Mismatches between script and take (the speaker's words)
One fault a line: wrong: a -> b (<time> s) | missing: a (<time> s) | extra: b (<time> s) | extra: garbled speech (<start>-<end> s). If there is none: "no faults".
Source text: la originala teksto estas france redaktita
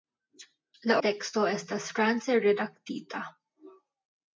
missing: originala (1.0 s)